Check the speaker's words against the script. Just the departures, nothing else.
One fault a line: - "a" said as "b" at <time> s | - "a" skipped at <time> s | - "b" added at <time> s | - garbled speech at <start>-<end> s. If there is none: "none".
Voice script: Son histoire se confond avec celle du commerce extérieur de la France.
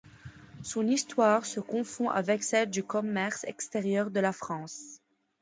none